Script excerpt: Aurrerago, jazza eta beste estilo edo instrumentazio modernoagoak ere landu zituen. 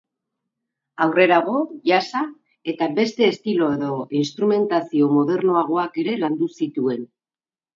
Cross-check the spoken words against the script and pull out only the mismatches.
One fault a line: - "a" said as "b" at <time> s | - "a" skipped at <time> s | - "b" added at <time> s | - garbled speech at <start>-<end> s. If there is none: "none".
none